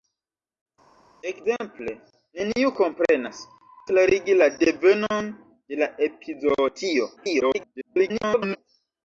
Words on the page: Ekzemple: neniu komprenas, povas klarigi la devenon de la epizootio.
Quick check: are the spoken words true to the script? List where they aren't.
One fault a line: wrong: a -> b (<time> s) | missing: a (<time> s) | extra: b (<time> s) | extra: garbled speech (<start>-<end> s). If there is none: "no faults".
missing: povas (3.4 s)
extra: garbled speech (7.2-8.6 s)